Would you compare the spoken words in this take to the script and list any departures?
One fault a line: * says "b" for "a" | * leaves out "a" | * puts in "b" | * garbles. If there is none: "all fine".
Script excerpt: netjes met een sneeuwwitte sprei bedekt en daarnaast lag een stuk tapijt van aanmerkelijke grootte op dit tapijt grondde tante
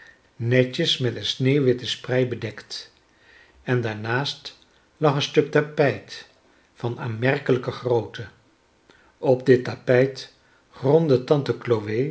all fine